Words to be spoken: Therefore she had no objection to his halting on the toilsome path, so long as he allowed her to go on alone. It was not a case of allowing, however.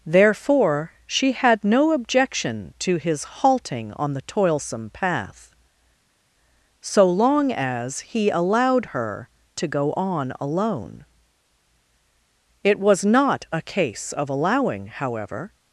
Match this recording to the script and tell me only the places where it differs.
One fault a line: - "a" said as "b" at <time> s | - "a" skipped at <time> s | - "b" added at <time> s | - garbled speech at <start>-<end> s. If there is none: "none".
none